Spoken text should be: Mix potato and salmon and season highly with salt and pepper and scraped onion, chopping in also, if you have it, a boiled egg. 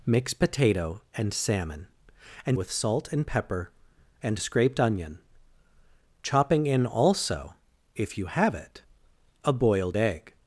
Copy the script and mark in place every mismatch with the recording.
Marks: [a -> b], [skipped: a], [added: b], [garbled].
Mix potato and salmon and [skipped: season highly] with salt and pepper and scraped onion, chopping in also, if you have it, a boiled egg.